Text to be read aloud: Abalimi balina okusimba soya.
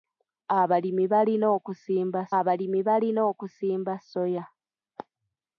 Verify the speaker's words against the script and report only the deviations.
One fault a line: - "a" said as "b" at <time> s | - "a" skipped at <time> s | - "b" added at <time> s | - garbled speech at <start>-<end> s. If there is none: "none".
- "abalimi balina okusimba" added at 2.4 s